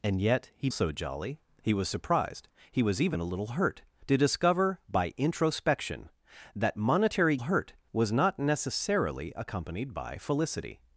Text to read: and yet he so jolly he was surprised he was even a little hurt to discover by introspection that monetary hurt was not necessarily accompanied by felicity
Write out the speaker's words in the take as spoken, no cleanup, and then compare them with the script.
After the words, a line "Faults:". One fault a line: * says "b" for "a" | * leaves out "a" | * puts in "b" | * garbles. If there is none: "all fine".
and yet he so jolly he was surprised he was even a little hurt to discover by introspection that monetary hurt was not necessarily accompanied by felicity
Faults:
all fine